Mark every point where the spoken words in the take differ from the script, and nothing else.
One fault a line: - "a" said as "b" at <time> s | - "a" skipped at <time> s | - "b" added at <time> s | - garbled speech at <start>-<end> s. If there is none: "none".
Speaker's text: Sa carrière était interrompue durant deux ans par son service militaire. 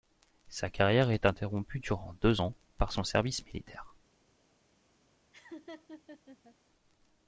- "était" said as "est" at 1.1 s